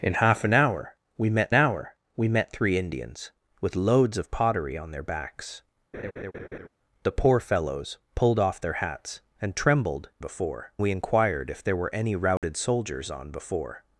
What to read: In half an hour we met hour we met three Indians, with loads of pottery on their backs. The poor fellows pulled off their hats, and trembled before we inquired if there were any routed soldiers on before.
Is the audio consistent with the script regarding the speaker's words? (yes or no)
yes